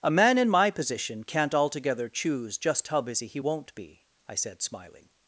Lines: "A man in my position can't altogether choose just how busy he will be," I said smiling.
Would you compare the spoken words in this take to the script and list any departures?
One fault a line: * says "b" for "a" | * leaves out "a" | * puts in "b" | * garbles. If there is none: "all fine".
* says "won't" for "will"